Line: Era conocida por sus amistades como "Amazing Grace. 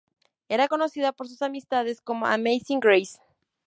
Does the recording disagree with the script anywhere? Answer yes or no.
no